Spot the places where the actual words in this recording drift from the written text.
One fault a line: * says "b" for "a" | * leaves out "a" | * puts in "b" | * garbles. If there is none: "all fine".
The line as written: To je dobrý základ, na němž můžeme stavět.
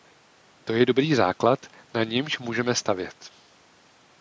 all fine